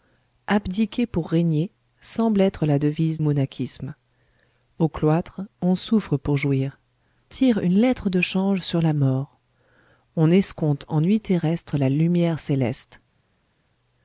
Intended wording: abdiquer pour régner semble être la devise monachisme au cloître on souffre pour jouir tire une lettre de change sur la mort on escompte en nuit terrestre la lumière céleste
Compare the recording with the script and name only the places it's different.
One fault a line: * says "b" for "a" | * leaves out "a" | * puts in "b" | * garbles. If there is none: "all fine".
all fine